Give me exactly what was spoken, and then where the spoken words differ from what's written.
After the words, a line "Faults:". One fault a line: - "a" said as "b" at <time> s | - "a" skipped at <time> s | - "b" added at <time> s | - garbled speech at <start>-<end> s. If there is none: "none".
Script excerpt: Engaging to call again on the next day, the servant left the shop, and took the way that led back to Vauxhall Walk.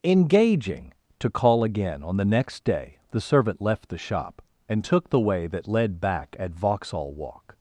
Engaging to call again on the next day, the servant left the shop, and took the way that led back at Vauxhall Walk.
Faults:
- "to" said as "at" at 6.4 s